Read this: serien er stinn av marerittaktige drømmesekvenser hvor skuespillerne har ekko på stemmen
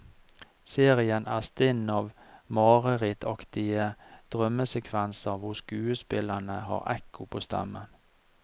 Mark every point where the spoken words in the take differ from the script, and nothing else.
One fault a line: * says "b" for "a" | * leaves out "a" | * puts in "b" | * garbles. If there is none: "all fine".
all fine